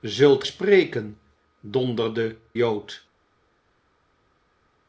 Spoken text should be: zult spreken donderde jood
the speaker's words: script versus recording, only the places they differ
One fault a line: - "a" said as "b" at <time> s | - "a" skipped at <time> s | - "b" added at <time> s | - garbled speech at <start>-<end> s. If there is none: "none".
none